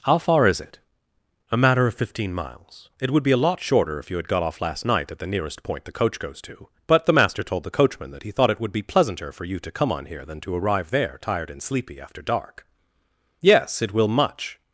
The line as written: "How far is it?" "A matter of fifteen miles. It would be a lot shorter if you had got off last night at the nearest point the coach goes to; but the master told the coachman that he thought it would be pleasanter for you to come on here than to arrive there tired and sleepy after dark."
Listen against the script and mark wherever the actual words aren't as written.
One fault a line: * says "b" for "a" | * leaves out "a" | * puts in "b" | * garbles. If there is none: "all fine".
* puts in "Yes it will much"